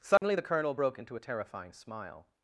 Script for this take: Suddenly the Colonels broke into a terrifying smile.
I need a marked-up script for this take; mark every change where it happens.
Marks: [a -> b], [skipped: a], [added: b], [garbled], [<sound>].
Suddenly [dropout] the [Colonels -> Colonel] broke into a terrifying smile.